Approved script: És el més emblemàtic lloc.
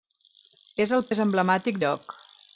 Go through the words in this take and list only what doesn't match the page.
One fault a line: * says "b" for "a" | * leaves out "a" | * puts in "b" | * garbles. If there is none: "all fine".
all fine